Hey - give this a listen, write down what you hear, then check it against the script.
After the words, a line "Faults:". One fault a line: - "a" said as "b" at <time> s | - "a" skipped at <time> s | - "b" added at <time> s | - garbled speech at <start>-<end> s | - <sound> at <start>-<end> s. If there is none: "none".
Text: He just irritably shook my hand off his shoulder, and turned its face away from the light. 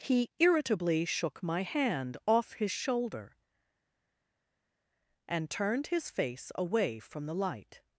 He irritably shook my hand off his shoulder, and turned his face away from the light.
Faults:
- "just" skipped at 0.3 s
- "its" said as "his" at 5.9 s